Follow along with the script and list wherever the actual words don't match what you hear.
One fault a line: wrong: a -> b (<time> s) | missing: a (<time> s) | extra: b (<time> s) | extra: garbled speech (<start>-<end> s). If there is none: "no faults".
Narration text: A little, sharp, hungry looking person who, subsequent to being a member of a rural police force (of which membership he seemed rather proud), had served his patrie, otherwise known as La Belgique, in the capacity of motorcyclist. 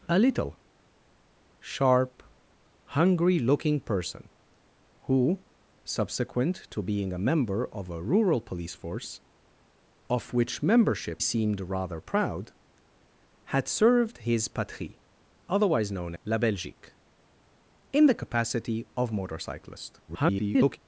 missing: he (11.2 s)
missing: as (16.1 s)
extra: garbled speech (20.1-20.8 s)